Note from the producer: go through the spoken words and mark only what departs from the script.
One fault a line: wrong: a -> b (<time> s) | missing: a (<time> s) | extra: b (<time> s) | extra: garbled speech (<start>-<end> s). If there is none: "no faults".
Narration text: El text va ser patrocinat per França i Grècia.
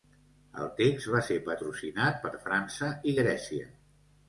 no faults